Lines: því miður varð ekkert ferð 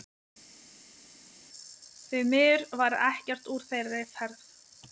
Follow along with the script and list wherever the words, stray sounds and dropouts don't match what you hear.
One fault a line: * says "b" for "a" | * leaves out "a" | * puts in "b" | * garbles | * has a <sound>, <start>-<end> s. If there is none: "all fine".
* puts in "úr þeirri"